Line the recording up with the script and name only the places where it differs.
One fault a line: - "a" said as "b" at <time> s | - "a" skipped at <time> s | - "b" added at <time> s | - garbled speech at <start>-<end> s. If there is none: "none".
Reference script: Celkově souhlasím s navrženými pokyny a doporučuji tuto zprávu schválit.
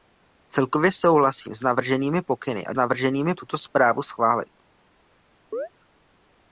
- "doporučuji" said as "navrženými" at 2.7 s